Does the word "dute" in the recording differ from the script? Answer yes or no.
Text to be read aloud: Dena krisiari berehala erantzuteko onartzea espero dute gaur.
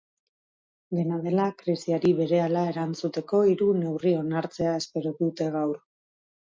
no